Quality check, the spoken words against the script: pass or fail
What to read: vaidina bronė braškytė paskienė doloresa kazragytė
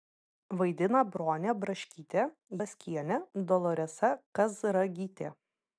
pass